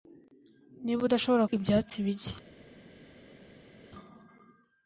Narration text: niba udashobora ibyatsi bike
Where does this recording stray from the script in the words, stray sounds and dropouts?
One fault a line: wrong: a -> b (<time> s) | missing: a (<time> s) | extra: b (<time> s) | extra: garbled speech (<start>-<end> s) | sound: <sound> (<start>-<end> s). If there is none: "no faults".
no faults